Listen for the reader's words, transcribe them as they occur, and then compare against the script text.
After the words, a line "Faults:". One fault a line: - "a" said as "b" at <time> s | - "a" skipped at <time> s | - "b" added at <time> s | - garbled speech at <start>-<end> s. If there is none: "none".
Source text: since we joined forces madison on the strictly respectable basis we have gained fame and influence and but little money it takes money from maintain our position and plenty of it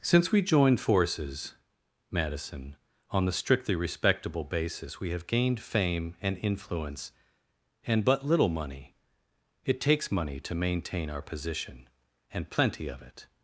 since we joined forces madison on the strictly respectable basis we have gained fame and influence and but little money it takes money to maintain our position and plenty of it
Faults:
- "from" said as "to" at 10.4 s